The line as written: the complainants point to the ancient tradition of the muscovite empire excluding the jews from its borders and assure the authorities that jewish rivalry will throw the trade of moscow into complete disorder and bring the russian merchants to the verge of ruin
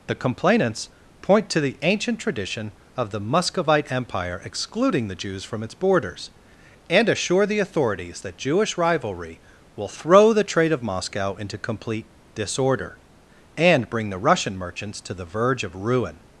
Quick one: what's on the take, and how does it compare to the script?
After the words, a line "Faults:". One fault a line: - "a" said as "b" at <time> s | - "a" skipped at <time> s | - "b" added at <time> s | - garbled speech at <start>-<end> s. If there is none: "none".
the complainants point to the ancient tradition of the muscovite empire excluding the jews from its borders and assure the authorities that jewish rivalry will throw the trade of moscow into complete disorder and bring the russian merchants to the verge of ruin
Faults:
none